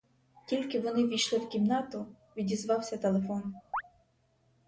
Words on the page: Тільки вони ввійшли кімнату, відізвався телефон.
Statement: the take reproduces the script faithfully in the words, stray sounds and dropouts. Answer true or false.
false